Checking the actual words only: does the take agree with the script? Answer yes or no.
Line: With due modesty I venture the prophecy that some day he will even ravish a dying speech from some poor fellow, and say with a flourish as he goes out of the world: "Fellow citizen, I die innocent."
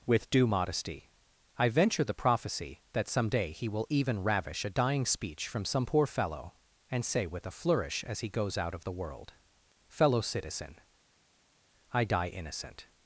yes